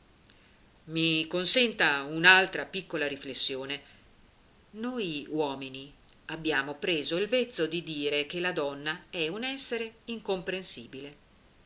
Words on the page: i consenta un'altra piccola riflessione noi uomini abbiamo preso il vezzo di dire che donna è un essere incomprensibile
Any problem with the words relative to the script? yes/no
yes